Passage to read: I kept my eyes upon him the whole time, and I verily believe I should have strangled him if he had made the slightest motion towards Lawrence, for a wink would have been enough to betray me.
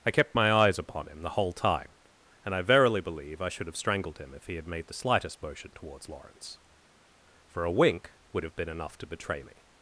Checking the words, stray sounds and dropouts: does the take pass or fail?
pass